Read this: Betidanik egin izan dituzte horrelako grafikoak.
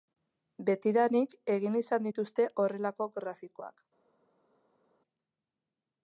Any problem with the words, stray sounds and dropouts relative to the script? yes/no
no